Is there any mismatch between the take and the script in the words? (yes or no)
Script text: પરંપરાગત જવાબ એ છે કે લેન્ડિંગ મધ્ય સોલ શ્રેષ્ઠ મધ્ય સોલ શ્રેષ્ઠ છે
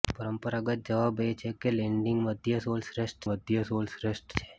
no